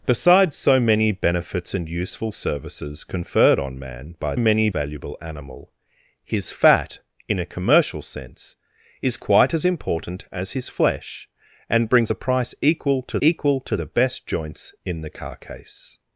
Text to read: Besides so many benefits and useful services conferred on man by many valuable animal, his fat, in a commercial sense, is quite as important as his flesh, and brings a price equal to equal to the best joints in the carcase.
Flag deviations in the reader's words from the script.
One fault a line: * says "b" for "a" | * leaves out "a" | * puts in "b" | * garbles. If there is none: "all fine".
all fine